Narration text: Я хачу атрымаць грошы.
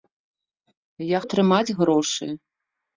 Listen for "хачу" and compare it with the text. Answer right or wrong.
wrong